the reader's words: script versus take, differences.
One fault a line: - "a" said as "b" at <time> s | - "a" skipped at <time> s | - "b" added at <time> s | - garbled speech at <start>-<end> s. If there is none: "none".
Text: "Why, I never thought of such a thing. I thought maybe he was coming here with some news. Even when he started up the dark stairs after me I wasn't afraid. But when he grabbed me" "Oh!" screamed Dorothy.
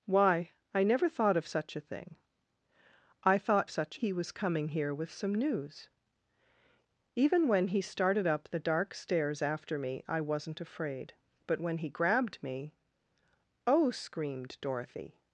- "maybe" said as "such" at 3.7 s